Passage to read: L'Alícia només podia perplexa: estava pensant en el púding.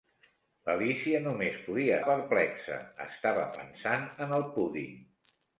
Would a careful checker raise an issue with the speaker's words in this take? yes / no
no